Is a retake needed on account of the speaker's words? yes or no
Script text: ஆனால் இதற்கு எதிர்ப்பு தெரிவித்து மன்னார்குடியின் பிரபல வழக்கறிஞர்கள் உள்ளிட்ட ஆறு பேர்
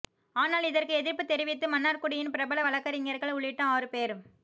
no